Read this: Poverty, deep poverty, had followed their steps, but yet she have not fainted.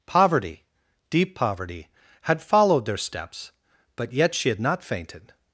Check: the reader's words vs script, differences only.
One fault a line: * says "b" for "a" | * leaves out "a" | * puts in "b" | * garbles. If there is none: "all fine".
* says "had" for "have"